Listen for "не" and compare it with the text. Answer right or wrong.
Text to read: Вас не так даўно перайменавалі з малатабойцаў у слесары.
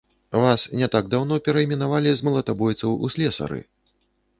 right